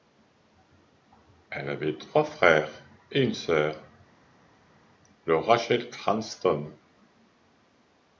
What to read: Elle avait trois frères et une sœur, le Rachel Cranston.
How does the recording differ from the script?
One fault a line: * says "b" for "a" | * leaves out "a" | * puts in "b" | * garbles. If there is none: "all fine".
all fine